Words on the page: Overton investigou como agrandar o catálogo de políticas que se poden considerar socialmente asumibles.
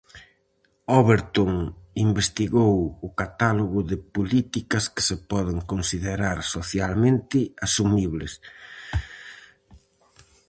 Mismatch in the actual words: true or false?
true